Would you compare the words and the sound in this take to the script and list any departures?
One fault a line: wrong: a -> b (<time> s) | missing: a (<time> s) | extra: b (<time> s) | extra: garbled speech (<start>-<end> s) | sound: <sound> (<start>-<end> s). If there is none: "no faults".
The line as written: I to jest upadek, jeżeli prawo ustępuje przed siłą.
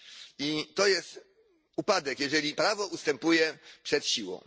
no faults